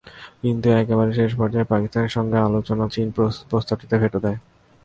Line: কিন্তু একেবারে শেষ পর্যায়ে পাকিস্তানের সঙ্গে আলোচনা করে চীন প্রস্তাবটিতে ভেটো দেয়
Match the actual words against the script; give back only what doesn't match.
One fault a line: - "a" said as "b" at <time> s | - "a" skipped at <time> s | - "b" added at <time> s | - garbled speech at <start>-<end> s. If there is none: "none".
- "করে" skipped at 2.9 s